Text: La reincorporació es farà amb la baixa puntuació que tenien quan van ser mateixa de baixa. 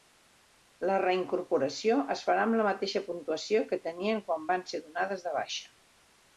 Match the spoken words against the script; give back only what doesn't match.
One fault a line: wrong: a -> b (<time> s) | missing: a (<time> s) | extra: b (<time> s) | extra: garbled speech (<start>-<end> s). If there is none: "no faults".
wrong: baixa -> mateixa (2.7 s)
wrong: mateixa -> donades (4.9 s)